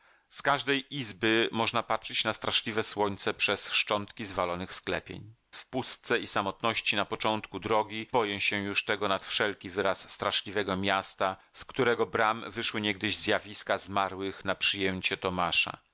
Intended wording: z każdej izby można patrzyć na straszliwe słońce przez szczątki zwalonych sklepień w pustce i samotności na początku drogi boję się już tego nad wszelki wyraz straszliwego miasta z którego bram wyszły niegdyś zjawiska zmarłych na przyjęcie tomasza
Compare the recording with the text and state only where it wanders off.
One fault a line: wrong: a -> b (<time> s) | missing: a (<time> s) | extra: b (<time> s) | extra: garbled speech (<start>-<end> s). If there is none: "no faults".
no faults